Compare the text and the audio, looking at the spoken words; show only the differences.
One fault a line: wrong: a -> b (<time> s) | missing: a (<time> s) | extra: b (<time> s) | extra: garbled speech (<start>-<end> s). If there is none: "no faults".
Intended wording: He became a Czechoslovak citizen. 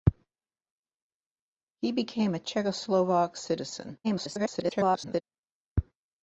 extra: garbled speech (4.0-5.2 s)